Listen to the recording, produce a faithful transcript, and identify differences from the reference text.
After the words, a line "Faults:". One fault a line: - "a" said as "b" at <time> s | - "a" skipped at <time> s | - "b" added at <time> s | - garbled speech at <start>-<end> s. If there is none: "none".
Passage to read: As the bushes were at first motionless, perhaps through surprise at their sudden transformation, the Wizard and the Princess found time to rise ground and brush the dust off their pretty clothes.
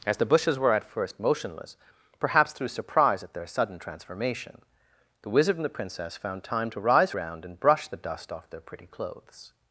As the bushes were at first motionless, perhaps through surprise at their sudden transformation, the Wizard and the Princess found time to rise ground and brush the dust off their pretty clothes.
Faults:
none